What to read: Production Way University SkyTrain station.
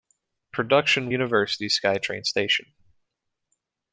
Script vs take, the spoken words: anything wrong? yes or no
yes